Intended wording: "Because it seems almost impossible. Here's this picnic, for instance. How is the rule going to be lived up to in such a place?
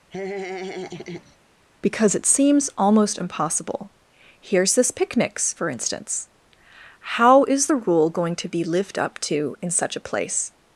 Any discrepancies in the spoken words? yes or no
yes